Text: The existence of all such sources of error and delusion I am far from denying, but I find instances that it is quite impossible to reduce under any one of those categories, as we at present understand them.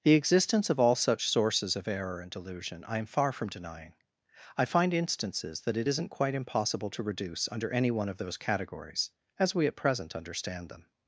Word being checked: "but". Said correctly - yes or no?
no